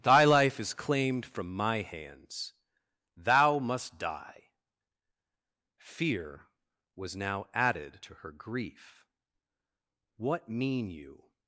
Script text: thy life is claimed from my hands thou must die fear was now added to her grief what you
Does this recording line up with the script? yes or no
no